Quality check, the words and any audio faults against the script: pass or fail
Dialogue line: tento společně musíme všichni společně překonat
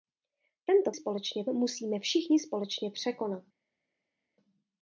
pass